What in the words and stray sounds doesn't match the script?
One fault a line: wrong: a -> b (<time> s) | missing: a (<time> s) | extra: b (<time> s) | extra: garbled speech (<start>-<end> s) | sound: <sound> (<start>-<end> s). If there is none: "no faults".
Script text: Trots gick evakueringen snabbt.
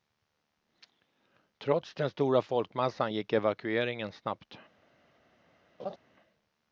extra: den stora folkmassan (1.9 s)
sound: laugh (5.8-6.0 s)